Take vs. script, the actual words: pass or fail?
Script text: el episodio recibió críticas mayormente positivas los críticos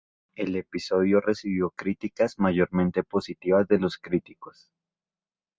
fail